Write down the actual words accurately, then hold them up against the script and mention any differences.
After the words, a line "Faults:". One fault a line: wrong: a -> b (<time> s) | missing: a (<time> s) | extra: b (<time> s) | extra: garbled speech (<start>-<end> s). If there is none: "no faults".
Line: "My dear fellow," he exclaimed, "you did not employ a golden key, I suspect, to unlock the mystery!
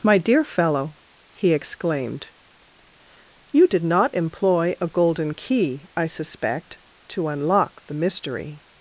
"My dear fellow," he exclaimed, "you did not employ a golden key, I suspect, to unlock the mystery!
Faults:
no faults